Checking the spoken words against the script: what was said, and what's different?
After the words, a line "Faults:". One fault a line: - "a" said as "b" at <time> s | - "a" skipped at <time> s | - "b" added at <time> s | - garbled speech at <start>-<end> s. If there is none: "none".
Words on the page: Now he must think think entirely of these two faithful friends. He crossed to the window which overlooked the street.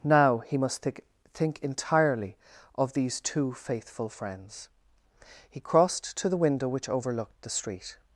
Now he must think think entirely of these two faithful friends. He crossed to the window which overlooked the street.
Faults:
none